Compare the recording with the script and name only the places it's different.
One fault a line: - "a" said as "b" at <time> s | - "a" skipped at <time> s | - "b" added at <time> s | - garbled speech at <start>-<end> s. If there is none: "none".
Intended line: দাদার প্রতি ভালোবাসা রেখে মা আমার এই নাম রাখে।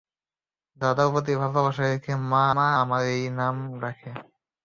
- "মা" added at 2.6 s